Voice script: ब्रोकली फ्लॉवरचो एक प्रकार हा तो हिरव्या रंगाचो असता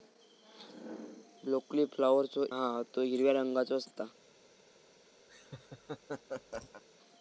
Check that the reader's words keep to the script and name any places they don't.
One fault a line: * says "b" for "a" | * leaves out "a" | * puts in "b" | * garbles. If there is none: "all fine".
* leaves out "एक प्रकार"